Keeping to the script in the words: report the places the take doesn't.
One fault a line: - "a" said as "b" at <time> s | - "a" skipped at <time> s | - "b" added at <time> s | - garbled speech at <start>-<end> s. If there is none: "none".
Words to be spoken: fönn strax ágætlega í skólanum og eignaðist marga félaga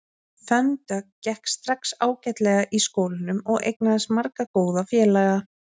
- "dögg gekk" added at 0.9 s
- "góða" added at 4.6 s